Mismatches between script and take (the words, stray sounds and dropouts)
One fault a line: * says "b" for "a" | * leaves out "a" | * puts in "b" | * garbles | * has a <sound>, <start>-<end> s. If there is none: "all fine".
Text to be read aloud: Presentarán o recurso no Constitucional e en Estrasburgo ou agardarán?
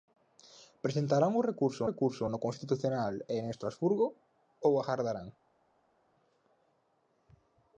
* puts in "recurso"